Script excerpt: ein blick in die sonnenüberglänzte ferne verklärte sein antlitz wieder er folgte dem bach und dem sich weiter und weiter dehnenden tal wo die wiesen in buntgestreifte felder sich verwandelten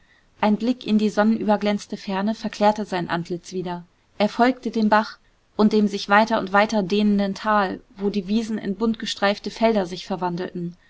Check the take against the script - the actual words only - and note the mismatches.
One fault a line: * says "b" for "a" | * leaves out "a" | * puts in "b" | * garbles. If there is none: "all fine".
all fine